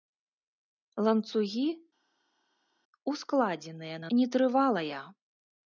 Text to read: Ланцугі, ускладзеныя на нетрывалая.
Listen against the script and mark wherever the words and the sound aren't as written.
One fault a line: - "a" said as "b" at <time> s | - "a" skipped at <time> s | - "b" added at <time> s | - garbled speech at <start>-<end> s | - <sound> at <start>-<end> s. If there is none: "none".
none